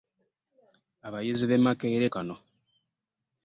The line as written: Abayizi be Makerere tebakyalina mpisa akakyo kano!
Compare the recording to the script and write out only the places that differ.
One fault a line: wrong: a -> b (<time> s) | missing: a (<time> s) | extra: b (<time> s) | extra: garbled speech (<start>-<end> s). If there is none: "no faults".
missing: tebakyalina mpisa akakyo (2.1 s)